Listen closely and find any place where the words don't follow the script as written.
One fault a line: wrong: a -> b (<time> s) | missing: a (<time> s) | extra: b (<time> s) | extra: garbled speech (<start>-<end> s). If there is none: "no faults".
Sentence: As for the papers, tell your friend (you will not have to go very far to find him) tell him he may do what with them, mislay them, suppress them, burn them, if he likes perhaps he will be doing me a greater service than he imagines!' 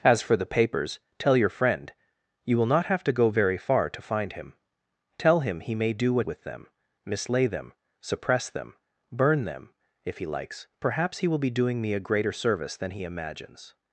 no faults